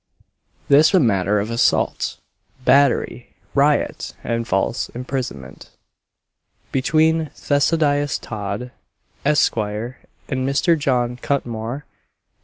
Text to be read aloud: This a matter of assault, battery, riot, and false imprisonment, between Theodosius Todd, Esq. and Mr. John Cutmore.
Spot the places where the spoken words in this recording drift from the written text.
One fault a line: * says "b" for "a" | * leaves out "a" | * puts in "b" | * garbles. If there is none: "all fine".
all fine